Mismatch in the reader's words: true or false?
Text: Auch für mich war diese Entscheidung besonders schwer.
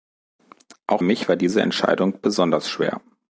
true